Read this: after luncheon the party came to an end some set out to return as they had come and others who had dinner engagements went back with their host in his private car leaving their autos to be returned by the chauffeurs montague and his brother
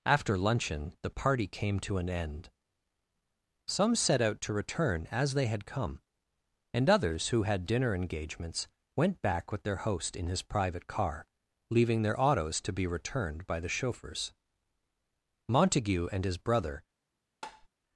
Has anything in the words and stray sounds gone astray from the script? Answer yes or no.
yes